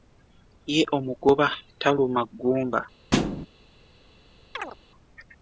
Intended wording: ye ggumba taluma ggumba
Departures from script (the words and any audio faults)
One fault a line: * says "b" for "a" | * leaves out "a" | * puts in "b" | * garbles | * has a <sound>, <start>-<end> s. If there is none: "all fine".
* says "omugoba" for "ggumba"
* has a thud, 3.1-3.5 s
* has a chirp, 4.5-4.8 s